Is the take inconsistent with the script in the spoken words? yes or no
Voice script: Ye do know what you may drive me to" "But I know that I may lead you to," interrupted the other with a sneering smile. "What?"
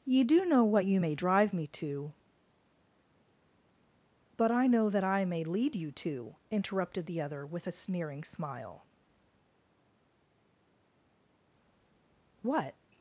no